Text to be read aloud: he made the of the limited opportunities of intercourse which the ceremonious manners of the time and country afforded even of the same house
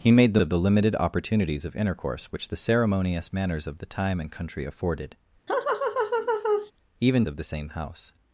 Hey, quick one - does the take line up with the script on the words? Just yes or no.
yes